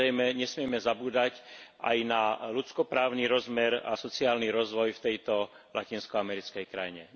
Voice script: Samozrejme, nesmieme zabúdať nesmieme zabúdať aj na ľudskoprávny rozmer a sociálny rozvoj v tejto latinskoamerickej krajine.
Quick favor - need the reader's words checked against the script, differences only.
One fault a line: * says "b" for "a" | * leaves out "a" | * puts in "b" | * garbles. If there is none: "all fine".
* leaves out "nesmieme zabúdať"